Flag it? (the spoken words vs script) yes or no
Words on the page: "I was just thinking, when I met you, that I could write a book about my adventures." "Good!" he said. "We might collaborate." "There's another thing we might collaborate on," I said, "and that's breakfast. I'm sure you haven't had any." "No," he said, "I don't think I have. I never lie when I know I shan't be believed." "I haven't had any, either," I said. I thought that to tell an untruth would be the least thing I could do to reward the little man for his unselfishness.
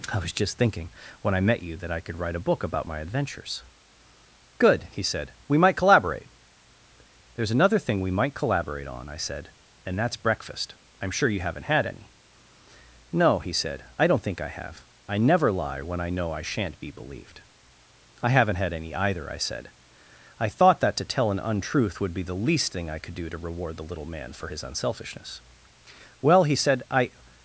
yes